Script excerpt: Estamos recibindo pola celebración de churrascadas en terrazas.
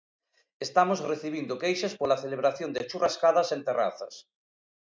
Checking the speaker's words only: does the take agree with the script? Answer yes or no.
no